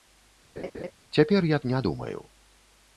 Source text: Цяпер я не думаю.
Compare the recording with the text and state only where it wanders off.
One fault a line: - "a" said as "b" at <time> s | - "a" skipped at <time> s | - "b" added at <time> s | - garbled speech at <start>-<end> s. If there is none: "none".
none